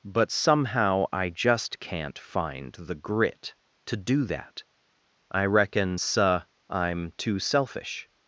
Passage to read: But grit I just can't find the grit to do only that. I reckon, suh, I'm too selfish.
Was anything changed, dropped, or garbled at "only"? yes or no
yes